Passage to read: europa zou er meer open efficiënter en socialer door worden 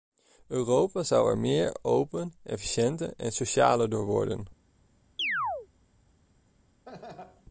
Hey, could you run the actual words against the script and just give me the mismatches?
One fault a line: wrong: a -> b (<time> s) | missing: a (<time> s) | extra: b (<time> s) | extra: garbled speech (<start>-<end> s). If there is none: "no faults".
no faults